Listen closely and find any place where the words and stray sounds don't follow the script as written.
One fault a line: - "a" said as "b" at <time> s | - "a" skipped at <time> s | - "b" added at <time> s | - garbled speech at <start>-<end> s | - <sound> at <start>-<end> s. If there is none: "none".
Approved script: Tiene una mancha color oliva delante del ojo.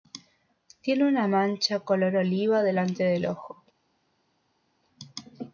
none